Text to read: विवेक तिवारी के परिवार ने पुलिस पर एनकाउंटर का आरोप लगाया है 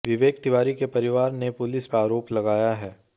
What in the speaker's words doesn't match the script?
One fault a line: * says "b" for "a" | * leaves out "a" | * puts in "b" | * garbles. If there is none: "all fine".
* leaves out "पर एनकाउंटर"